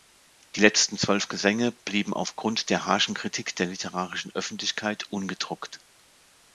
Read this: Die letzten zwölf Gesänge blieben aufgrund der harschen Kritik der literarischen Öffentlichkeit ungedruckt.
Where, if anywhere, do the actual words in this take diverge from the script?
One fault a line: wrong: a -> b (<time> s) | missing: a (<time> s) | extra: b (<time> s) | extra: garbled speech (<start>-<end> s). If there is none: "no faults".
no faults